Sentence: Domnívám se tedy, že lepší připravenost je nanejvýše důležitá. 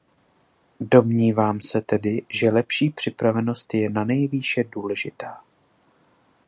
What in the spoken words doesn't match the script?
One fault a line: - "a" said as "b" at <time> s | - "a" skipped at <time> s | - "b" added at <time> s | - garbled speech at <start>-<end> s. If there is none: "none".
none